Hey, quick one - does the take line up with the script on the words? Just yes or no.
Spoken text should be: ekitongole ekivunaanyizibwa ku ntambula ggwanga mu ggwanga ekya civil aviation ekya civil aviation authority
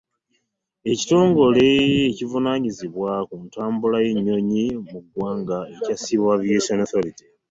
no